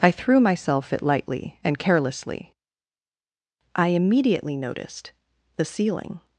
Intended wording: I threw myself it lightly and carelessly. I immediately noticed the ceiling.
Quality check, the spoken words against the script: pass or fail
pass